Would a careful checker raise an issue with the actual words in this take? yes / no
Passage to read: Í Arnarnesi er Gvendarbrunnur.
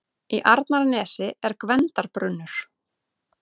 no